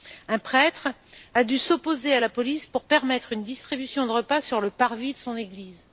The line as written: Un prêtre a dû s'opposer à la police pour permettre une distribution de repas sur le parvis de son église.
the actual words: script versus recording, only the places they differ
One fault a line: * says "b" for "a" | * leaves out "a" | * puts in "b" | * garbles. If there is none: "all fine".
all fine